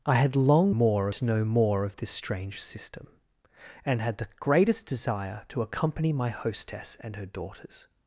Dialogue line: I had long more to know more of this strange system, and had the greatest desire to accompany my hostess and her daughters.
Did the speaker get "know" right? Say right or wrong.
right